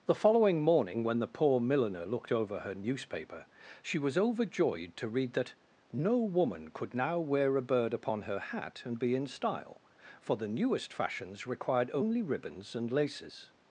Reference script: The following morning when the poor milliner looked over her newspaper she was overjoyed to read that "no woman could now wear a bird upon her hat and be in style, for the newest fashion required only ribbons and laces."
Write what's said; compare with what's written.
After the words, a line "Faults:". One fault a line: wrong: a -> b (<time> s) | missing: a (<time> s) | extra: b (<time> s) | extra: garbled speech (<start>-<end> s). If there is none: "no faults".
The following morning when the poor milliner looked over her newspaper she was overjoyed to read that "no woman could now wear a bird upon her hat and be in style, for the newest fashions required only ribbons and laces."
Faults:
wrong: fashion -> fashions (10.9 s)